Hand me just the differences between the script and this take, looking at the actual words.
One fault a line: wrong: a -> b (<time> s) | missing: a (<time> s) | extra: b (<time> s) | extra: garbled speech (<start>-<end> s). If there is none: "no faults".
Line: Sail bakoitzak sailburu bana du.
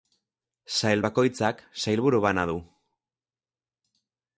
no faults